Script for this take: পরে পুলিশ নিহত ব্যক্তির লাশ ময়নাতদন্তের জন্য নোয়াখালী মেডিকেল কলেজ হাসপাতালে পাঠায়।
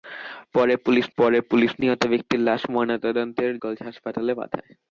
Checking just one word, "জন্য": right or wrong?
wrong